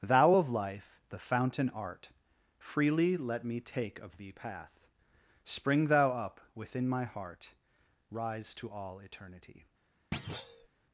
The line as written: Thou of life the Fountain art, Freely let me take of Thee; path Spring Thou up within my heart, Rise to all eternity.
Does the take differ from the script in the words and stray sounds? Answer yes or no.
yes